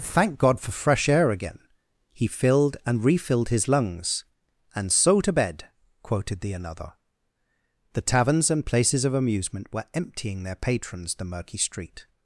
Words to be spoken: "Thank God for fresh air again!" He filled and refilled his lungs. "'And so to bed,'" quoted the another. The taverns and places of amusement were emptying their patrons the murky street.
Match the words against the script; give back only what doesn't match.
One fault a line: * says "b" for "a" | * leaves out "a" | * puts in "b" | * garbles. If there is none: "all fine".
all fine